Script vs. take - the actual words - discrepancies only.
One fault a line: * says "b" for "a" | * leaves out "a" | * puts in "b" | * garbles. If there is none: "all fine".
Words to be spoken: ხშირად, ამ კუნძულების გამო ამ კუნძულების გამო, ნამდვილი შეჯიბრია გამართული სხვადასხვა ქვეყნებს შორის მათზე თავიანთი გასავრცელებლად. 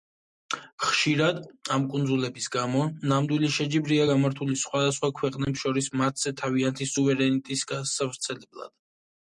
* leaves out "ამ კუნძულების გამო"
* puts in "სუვერენიტეტის"